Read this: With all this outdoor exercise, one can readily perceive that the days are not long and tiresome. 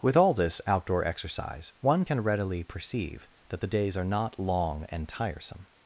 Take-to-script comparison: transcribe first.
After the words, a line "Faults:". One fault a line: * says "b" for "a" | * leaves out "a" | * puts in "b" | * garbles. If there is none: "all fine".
With all this outdoor exercise, one can readily perceive that the days are not long and tiresome.
Faults:
all fine